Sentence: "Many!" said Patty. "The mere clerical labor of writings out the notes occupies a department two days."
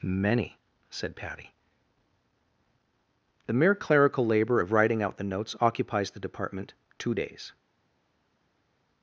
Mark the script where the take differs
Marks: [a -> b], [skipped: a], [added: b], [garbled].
"Many!" said Patty. "The mere clerical labor of [writings -> writing] out the notes occupies [a -> the] department two days."